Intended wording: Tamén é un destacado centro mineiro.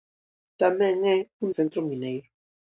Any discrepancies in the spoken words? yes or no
yes